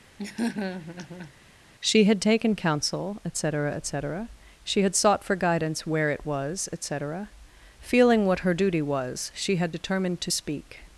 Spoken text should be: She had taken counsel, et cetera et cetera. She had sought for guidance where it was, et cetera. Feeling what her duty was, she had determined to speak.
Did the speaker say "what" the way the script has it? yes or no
yes